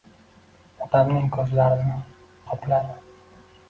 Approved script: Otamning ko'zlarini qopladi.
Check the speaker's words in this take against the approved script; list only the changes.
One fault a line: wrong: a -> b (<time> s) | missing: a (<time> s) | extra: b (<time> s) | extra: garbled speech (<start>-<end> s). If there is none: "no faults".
no faults